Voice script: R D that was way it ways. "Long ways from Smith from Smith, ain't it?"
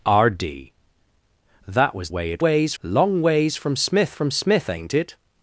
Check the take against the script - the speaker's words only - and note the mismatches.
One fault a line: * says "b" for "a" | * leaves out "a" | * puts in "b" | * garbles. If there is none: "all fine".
all fine